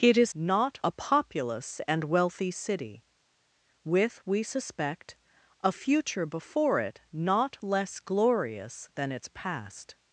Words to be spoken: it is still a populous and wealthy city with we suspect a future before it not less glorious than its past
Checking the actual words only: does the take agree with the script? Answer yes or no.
no